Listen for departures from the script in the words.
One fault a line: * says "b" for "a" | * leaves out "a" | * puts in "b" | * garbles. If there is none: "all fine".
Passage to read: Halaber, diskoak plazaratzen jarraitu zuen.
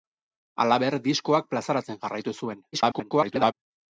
* garbles